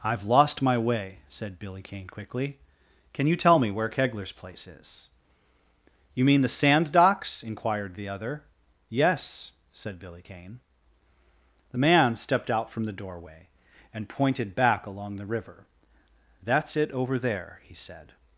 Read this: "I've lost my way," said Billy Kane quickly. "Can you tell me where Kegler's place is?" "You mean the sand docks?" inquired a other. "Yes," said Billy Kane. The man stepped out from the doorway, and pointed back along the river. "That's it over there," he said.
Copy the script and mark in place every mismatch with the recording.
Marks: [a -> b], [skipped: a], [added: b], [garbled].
"I've lost my way," said Billy Kane quickly. "Can you tell me where Kegler's place is?" "You mean the sand docks?" inquired [a -> the] other. "Yes," said Billy Kane. The man stepped out from the doorway, and pointed back along the river. "That's it over there," he said.